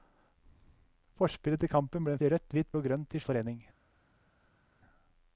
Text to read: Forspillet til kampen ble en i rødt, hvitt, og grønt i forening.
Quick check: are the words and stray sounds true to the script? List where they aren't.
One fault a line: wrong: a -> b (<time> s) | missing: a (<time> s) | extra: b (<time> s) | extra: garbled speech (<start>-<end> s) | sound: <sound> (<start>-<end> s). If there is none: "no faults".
no faults